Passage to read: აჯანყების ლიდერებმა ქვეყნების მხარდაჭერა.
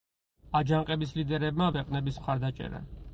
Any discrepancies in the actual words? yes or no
no